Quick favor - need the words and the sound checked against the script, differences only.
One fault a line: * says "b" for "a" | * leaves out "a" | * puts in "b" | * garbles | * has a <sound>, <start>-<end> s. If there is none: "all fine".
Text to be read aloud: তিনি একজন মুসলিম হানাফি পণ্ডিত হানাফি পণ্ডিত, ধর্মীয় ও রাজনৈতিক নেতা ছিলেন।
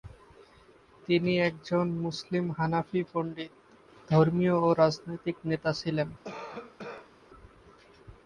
* leaves out "হানাফি পণ্ডিত"
* has a cough, 6.2-7.1 s